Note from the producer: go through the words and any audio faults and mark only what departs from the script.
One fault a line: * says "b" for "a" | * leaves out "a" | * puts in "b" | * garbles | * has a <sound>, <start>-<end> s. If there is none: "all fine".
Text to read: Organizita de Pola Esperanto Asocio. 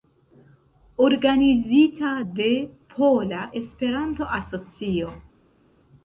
all fine